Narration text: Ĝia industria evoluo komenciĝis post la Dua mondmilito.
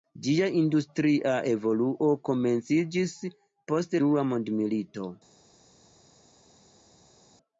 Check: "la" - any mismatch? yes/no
yes